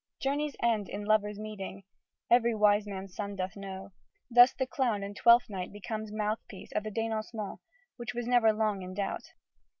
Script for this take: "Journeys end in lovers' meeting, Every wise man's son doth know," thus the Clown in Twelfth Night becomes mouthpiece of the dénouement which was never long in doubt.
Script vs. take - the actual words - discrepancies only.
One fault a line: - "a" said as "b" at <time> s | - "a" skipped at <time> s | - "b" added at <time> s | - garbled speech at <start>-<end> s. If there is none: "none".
none